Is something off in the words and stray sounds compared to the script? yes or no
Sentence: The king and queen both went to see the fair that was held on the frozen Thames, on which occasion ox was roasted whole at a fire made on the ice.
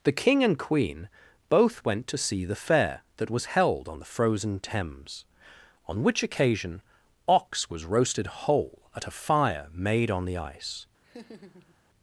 yes